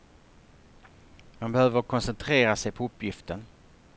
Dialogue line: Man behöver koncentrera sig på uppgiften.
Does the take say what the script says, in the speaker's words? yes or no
yes